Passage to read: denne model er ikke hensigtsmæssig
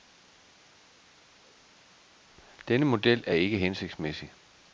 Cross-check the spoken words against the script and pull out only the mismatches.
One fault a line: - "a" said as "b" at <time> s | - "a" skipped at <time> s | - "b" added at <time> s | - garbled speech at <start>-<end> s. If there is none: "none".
none